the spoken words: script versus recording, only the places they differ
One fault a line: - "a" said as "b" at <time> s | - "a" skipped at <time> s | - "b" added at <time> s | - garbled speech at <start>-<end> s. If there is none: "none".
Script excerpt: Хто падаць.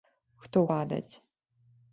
none